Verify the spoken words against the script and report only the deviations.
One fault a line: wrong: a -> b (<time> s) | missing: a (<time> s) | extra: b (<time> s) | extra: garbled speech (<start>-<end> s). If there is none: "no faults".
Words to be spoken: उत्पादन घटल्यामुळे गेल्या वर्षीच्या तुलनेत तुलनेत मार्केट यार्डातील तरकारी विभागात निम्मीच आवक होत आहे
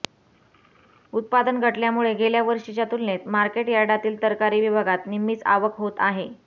missing: तुलनेत (3.3 s)